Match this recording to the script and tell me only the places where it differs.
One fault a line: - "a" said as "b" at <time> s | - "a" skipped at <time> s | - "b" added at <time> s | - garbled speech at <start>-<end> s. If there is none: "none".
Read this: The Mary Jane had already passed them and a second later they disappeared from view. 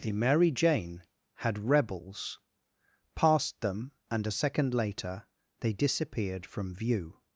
- "already" said as "rebels" at 1.6 s